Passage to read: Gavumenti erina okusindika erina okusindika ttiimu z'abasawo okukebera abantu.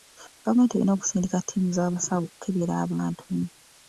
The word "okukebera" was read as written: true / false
true